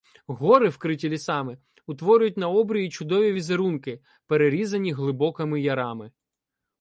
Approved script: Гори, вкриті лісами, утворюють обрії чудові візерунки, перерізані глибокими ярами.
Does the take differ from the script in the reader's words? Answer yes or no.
yes